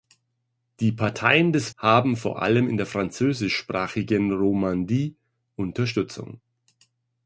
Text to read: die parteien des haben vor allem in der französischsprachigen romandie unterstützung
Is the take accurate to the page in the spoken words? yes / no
yes